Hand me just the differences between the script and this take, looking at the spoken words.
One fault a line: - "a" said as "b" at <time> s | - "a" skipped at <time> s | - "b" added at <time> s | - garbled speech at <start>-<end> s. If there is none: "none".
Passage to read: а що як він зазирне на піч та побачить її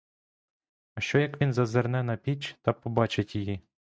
none